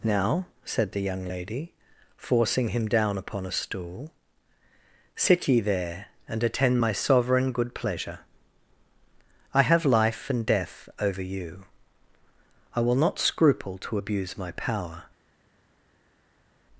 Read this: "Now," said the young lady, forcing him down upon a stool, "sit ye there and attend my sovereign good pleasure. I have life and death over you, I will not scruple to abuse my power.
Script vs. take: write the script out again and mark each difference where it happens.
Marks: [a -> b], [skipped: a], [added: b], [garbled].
"Now," said the young lady, forcing him down upon a stool, "sit ye there and attend my sovereign good pleasure. I have life and death over you, I will not scruple to abuse my power.